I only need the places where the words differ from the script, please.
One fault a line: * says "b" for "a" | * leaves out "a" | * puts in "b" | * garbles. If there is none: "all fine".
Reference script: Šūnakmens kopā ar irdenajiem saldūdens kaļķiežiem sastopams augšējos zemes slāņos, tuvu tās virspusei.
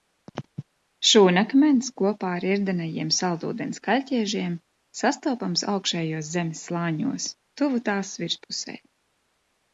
all fine